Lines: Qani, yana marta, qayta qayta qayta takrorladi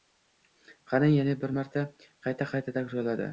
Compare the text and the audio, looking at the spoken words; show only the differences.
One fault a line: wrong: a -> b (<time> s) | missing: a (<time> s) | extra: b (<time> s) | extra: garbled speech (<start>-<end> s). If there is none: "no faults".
extra: bir (1.4 s)
missing: qayta (2.8 s)